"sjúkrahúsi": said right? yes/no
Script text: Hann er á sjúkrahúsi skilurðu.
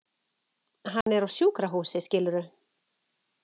yes